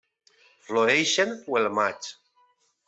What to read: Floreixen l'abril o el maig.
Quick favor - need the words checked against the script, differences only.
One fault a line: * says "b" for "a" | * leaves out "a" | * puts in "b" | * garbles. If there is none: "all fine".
* leaves out "l'abril"